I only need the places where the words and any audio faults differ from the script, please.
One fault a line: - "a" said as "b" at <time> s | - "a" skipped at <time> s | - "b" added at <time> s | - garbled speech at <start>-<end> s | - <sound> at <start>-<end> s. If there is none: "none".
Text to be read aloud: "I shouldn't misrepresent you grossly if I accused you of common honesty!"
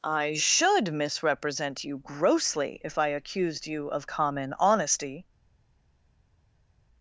- "shouldn't" said as "should" at 0.3 s